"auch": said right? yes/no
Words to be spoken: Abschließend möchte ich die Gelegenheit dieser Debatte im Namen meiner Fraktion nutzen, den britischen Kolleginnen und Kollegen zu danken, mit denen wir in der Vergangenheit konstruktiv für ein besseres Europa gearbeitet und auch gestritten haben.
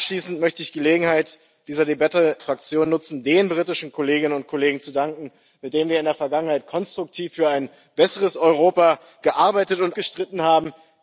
no